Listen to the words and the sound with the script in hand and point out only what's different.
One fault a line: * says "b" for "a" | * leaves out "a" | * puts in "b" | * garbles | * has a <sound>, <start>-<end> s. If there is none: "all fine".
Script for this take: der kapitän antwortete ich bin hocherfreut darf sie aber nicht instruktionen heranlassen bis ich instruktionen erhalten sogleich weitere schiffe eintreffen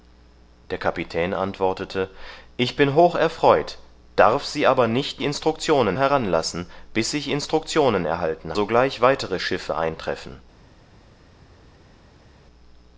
all fine